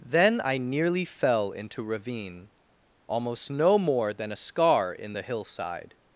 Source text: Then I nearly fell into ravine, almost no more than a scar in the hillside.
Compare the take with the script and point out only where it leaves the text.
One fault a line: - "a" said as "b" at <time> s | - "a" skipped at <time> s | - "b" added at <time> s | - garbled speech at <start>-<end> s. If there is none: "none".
none